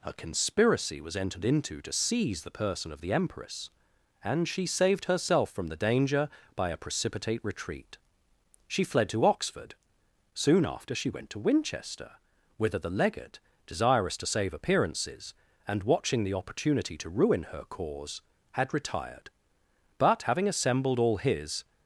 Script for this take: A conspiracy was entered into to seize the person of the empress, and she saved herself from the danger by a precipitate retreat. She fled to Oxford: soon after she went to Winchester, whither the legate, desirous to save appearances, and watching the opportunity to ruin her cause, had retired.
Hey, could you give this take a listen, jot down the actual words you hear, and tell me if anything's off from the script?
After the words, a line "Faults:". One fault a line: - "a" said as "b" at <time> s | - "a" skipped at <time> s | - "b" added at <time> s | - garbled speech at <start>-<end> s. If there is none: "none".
A conspiracy was entered into to seize the person of the empress, and she saved herself from the danger by a precipitate retreat. She fled to Oxford: soon after she went to Winchester, whither the legate, desirous to save appearances, and watching the opportunity to ruin her cause, had retired. But having assembled all his
Faults:
- "But having assembled all his" added at 20.0 s